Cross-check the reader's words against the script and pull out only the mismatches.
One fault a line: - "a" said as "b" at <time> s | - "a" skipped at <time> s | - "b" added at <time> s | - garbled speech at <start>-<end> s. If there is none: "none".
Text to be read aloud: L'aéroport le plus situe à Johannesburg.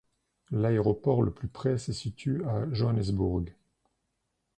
- "près se" added at 1.5 s